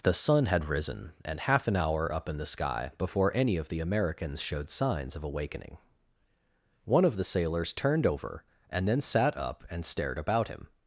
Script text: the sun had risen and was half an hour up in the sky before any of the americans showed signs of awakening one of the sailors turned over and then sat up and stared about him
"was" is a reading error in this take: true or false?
true